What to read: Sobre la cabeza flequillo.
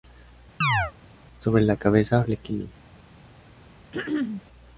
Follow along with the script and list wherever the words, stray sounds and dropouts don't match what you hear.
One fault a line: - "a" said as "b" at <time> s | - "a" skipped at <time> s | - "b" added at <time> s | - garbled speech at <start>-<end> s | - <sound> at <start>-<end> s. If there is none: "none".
- chirp at 0.6-0.9 s
- throat clearing at 3.9-4.4 s